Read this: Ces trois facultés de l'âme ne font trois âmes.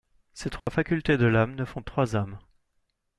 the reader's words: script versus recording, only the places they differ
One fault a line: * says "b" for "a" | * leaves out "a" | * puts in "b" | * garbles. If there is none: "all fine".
all fine